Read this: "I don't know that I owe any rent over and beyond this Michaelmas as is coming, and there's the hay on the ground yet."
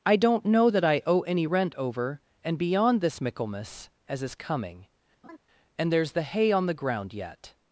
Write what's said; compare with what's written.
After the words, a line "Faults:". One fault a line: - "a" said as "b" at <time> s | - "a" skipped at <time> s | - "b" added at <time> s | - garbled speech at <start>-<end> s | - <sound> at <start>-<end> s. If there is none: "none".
"I don't know that I owe any rent over and beyond this Michaelmas as is coming, and there's the hay on the ground yet."
Faults:
- laugh at 5.2-5.4 s